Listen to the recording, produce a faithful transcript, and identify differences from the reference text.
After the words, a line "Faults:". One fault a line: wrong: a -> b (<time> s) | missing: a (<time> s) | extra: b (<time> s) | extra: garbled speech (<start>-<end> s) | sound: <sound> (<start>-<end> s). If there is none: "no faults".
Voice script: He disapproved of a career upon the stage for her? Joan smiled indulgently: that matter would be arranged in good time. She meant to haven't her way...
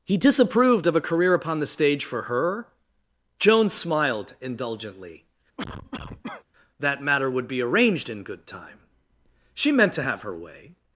He disapproved of a career upon the stage for her? Joan smiled indulgently: that matter would be arranged in good time. She meant to have her way...
Faults:
sound: cough (5.6-6.4 s)
wrong: haven't -> have (10.0 s)